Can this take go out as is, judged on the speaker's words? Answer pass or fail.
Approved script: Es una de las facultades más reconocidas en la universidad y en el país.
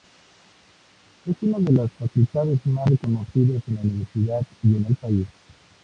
pass